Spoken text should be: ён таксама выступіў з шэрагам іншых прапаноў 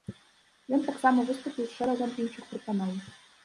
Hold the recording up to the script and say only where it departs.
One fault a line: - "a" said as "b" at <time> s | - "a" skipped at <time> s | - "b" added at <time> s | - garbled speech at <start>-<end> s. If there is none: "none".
none